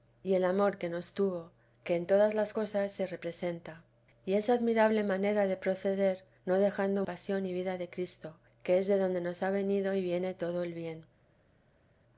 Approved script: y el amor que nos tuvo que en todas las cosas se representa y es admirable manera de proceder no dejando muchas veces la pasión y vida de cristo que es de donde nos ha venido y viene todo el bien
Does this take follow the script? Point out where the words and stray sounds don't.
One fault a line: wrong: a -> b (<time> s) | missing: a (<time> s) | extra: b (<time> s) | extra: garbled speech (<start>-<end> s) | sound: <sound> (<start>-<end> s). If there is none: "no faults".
missing: muchas veces la (7.0 s)